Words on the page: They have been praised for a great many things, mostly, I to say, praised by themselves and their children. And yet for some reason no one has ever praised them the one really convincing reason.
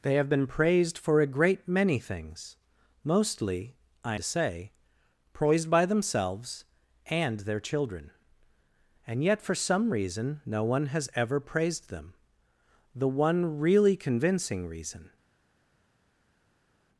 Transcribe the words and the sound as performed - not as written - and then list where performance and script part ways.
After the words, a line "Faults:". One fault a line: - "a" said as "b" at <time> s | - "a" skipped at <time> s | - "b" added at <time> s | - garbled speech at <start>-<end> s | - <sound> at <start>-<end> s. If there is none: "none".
They have been praised for a great many things, mostly, I to say, praised by themselves and their children. And yet for some reason no one has ever praised them the one really convincing reason.
Faults:
none